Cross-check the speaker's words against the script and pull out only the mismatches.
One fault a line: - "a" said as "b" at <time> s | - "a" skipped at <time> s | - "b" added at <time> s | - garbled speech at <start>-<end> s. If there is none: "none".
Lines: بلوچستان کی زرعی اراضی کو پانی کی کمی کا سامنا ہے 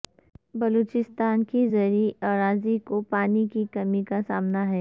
none